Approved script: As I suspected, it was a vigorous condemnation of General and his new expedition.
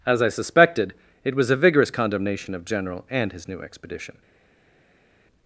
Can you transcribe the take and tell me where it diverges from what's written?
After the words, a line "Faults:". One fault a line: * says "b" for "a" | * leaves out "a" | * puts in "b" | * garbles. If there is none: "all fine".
As I suspected, it was a vigorous condemnation of General and his new expedition.
Faults:
all fine